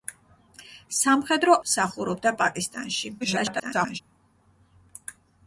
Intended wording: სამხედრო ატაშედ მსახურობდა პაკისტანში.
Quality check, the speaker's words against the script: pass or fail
fail